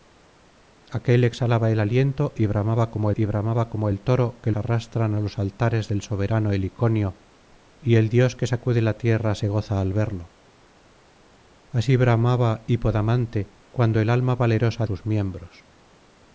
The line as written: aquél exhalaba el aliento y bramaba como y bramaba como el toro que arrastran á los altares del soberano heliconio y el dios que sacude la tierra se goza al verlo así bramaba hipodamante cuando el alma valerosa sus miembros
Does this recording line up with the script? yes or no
yes